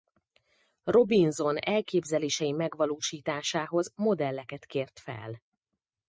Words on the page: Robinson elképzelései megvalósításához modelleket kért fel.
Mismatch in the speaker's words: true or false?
false